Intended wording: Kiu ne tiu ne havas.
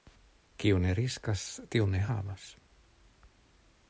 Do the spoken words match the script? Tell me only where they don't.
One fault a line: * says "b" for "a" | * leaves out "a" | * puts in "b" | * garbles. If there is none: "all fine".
* puts in "riskas"